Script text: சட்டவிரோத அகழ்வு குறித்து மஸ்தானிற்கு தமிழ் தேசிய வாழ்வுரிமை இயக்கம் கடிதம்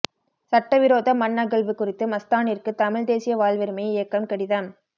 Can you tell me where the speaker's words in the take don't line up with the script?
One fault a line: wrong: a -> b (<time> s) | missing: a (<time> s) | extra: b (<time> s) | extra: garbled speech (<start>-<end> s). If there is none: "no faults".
extra: மண் (1.1 s)